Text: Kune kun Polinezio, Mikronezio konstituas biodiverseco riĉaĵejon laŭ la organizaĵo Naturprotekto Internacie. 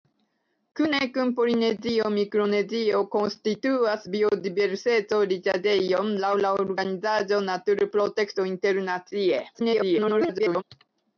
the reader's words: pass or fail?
fail